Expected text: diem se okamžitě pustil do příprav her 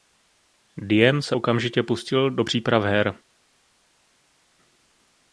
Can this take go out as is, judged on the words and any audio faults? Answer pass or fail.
pass